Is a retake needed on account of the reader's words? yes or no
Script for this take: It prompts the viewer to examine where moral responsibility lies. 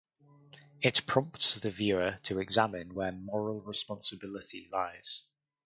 no